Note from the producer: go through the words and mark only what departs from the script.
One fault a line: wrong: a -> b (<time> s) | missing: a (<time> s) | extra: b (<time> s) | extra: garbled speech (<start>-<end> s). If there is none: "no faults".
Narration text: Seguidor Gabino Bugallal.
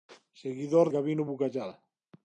no faults